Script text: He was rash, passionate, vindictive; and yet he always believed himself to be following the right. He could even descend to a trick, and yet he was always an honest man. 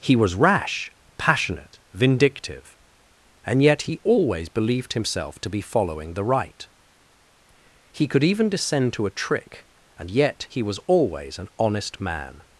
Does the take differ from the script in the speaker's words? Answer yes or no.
no